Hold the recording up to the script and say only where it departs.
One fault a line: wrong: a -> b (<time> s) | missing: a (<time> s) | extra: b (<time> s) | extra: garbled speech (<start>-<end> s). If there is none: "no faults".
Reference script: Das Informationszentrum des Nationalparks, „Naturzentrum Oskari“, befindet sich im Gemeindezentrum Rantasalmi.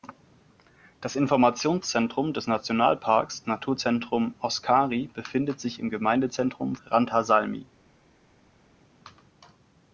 no faults